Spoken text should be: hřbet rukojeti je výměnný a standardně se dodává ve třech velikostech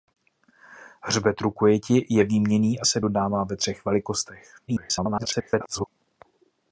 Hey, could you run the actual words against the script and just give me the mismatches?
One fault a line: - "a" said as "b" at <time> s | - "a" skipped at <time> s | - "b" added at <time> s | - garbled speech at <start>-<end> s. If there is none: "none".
- "standardně" skipped at 2.9 s
- garbled speech at 4.7-5.9 s